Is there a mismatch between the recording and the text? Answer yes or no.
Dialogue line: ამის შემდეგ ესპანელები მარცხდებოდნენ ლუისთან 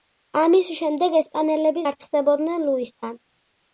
no